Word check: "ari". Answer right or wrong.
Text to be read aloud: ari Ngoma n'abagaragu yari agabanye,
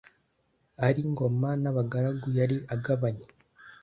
right